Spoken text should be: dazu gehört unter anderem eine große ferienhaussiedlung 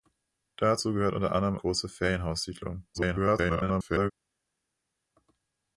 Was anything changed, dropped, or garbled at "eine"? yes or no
yes